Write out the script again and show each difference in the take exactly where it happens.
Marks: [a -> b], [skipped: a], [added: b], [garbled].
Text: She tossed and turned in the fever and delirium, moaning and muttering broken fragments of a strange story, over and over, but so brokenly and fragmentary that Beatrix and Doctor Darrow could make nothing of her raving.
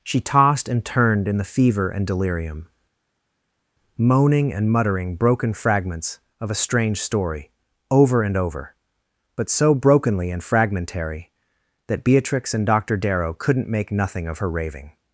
She tossed and turned in the fever and delirium, moaning and muttering broken fragments of a strange story, over and over, but so brokenly and fragmentary that Beatrix and Doctor Darrow [could -> couldn't] make nothing of her raving.